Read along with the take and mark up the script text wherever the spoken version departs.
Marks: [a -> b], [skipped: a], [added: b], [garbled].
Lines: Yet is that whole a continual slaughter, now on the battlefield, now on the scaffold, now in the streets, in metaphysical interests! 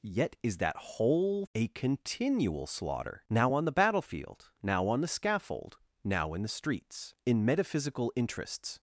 Yet is that whole a continual slaughter, now on the battlefield, now on the scaffold, now in the streets, in metaphysical interests!